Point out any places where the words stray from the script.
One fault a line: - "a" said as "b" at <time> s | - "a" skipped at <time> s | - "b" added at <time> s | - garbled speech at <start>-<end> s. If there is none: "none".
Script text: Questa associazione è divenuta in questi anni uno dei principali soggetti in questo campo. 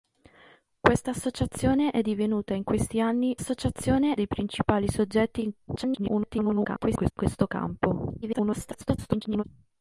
- "uno" said as "associazione" at 3.3 s
- garbled speech at 5.7-7.1 s
- garbled speech at 8.2-9.4 s